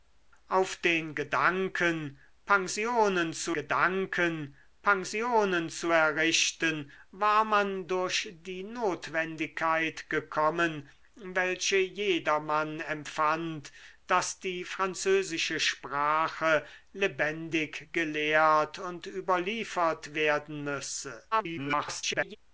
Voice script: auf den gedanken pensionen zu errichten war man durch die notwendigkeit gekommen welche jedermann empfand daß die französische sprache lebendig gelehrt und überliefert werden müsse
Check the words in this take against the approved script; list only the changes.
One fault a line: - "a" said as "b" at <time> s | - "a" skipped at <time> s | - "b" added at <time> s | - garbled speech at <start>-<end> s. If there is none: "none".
- "gedanken pensionen zu" added at 3.5 s
- garbled speech at 21.3-22.4 s